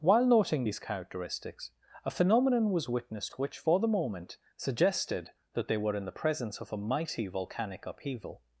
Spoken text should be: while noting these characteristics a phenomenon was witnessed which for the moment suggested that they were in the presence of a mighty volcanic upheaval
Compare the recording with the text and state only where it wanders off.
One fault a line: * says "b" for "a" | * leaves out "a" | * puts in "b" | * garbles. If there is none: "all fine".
all fine